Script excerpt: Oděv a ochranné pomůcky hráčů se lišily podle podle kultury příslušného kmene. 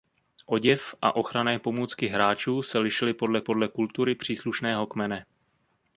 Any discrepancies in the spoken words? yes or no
no